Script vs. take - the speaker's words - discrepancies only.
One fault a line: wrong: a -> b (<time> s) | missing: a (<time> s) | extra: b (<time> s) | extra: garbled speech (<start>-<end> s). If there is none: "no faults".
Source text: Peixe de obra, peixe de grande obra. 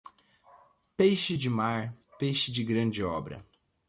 wrong: obra -> mar (1.5 s)